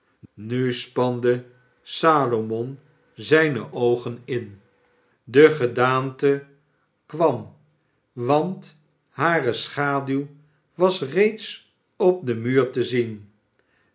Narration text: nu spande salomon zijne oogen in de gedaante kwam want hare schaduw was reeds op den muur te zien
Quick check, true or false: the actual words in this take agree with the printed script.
true